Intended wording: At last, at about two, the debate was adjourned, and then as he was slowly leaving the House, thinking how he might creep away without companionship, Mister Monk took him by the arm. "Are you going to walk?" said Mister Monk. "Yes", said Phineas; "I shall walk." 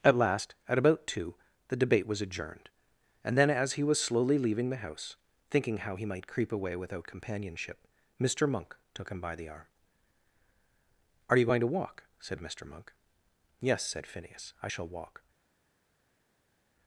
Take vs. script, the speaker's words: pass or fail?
pass